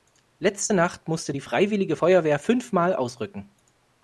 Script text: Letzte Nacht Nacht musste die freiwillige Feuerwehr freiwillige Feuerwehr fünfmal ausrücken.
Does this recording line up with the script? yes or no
no